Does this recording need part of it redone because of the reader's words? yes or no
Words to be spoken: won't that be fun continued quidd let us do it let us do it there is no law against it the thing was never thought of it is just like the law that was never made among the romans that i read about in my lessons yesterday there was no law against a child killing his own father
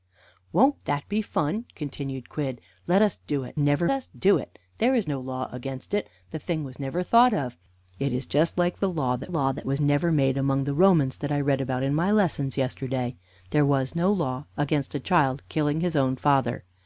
yes